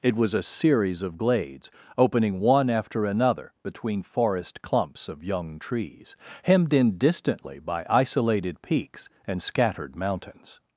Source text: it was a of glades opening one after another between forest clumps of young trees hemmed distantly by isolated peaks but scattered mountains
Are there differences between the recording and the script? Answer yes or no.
yes